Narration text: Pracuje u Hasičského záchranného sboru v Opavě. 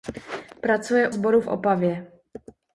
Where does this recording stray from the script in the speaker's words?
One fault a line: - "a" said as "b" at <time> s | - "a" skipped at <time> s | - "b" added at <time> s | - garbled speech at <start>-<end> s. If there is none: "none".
- "u Hasičského záchranného" skipped at 1.1 s